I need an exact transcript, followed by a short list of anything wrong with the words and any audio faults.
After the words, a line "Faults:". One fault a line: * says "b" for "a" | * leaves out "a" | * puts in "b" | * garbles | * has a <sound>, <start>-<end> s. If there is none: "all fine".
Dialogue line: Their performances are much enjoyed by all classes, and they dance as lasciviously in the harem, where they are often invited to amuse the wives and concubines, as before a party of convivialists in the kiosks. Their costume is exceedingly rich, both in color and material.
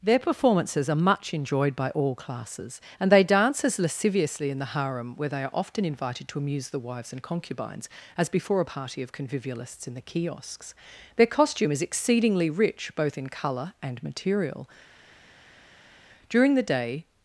Their performances are much enjoyed by all classes, and they dance as lasciviously in the harem, where they are often invited to amuse the wives and concubines, as before a party of convivialists in the kiosks. Their costume is exceedingly rich, both in color and material. During the day
Faults:
* puts in "During the day"